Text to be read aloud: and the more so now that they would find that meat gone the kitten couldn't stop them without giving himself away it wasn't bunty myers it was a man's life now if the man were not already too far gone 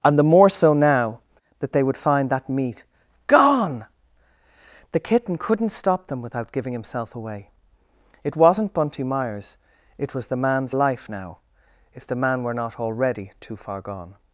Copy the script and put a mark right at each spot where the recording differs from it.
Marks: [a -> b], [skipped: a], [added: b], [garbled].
and the more so now that they would find that meat gone the kitten couldn't stop them without giving himself away it wasn't bunty myers it was [a -> the] man's life now if the man were not already too far gone